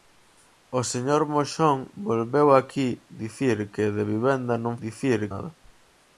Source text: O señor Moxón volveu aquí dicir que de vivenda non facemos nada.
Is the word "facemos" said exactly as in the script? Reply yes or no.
no